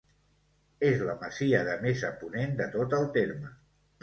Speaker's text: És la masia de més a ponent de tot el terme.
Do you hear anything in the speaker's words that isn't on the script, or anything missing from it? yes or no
no